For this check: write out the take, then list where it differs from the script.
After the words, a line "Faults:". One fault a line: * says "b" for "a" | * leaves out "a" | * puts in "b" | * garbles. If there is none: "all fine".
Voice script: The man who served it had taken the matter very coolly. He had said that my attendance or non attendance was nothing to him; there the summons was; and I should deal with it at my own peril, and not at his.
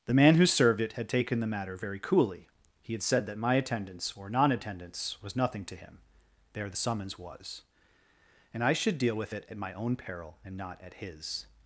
The man who served it had taken the matter very coolly. He had said that my attendance or non attendance was nothing to him; there the summons was; and I should deal with it at my own peril, and not at his.
Faults:
all fine